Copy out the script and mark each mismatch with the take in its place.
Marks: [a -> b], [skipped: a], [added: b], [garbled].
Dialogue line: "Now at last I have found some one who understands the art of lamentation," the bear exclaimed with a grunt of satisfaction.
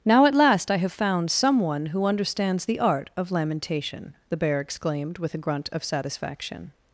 "Now at last I have found some one who understands the art of lamentation," the bear exclaimed with a grunt of satisfaction.